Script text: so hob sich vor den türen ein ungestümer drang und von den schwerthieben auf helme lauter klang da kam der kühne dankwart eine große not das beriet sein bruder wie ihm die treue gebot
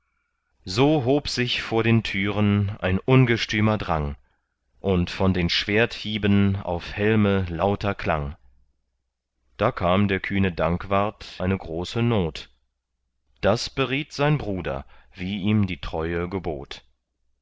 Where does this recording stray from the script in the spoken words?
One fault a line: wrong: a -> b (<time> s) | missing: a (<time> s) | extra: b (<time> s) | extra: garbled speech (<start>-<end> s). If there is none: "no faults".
no faults